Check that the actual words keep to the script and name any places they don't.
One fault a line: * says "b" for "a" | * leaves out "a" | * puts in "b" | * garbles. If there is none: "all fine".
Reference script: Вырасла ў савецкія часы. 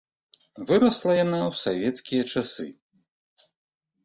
* puts in "яна"